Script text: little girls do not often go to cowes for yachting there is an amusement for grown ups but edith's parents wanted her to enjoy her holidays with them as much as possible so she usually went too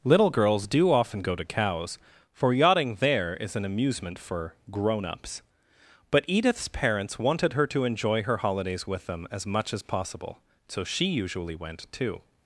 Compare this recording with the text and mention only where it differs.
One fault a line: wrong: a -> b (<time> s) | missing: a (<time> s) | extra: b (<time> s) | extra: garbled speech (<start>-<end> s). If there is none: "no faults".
missing: not (0.9 s)